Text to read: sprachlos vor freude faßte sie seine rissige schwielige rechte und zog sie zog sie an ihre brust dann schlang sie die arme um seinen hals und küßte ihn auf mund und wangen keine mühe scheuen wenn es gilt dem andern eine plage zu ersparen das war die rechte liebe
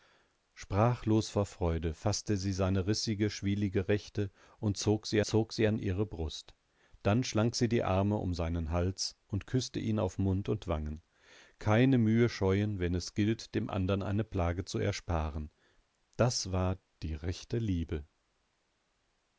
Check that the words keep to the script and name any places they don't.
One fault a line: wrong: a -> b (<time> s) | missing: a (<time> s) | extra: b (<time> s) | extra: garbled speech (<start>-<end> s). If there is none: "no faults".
no faults